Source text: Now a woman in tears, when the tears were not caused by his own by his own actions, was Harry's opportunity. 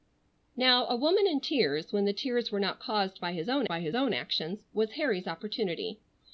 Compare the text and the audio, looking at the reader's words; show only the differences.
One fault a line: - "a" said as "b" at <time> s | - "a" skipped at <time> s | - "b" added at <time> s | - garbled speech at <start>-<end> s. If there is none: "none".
none